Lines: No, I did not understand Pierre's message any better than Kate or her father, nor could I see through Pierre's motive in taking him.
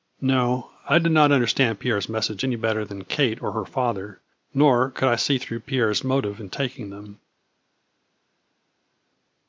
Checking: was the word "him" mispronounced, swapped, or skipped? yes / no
yes